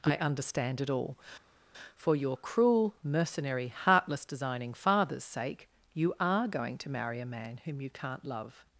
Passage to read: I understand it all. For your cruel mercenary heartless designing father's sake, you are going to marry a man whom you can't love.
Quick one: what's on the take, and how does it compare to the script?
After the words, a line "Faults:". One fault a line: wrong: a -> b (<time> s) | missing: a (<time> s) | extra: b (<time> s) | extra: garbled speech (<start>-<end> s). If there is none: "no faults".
I understand it all. For your cruel mercenary heartless designing father's sake, you are going to marry a man whom you can't love.
Faults:
no faults